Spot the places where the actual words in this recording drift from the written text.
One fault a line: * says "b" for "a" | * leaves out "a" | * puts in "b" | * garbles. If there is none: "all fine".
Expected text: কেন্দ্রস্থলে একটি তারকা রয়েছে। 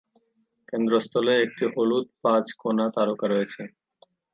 * puts in "হলুদ পাঁচ কোনা"